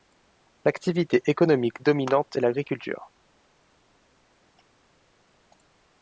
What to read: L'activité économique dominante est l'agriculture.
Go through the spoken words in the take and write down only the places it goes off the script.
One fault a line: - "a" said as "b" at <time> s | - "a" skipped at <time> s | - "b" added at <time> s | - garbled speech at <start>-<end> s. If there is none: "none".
none